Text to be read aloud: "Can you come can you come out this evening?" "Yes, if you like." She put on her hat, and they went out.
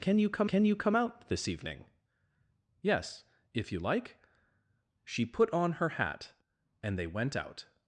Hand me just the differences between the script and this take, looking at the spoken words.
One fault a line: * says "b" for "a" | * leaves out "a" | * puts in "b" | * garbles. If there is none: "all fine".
all fine